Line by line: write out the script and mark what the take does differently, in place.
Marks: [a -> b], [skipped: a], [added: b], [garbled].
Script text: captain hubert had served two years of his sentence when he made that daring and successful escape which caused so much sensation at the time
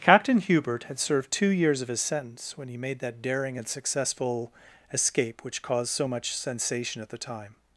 captain hubert had served two years of his sentence when he made that daring and successful escape which caused so much sensation at the time